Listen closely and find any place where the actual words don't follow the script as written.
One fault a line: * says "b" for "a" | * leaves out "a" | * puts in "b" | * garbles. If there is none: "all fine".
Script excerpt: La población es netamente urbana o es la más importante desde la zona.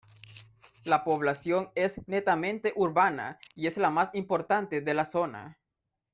* says "y" for "o"
* says "de" for "desde"